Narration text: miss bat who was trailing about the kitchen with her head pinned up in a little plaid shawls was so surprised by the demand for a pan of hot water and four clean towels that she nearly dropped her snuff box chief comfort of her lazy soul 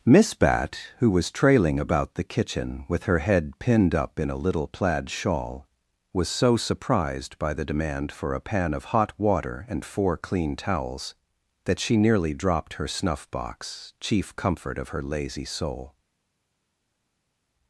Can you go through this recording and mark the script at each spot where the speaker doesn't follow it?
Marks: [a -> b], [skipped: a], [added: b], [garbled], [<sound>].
miss bat who was trailing about the kitchen with her head pinned up in a little plaid [shawls -> shawl] was so surprised by the demand for a pan of hot water and four clean towels that she nearly dropped her snuff box chief comfort of her lazy soul